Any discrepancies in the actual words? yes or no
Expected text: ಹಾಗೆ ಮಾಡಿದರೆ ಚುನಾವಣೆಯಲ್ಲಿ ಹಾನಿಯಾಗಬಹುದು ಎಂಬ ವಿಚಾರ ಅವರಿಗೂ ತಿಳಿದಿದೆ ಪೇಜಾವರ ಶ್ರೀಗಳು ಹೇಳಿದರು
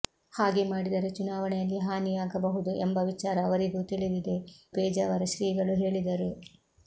no